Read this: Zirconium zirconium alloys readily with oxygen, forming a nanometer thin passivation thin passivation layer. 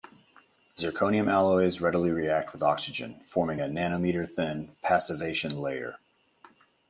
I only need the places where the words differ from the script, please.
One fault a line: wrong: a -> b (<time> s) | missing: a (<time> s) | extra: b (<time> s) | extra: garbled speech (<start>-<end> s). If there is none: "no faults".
missing: zirconium (1.3 s)
extra: react (2.1 s)
missing: thin passivation (5.6 s)